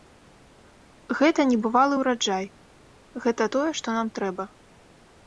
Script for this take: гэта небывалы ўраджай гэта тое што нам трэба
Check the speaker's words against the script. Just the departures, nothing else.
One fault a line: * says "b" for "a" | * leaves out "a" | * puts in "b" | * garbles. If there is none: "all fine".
all fine